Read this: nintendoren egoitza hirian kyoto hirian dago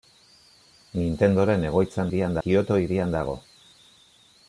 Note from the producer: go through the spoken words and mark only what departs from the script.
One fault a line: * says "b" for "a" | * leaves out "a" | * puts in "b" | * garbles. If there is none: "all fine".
all fine